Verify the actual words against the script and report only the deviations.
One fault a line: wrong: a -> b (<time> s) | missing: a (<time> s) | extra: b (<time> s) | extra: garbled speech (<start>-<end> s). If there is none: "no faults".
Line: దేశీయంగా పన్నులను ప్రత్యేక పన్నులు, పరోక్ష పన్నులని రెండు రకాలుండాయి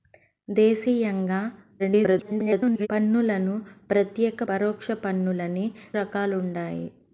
extra: garbled speech (1.8-2.9 s)
missing: పన్నులు (4.4 s)
missing: రెండు (5.7 s)